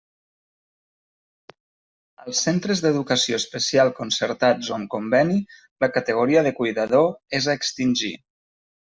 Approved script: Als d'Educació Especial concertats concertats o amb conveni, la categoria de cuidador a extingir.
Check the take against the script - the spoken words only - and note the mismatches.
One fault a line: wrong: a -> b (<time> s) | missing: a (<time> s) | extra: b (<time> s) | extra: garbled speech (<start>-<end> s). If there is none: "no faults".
extra: centres (2.5 s)
missing: concertats (4.7 s)
extra: és (7.4 s)